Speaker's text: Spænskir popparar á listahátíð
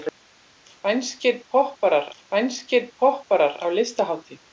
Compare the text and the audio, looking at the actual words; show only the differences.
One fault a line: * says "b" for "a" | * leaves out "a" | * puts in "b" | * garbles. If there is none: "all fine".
* puts in "spænskir popparar"